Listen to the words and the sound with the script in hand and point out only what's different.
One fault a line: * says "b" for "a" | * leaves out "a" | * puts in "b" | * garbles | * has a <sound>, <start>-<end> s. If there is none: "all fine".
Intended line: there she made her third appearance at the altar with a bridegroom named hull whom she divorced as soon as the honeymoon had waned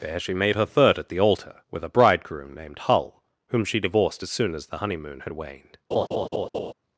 * leaves out "appearance"
* has a laugh, 5.9-6.7 s